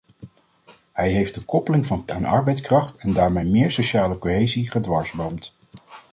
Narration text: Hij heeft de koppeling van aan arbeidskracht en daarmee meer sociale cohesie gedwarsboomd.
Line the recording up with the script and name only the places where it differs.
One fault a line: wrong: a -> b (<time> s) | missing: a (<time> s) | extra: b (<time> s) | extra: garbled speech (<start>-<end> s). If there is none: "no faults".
no faults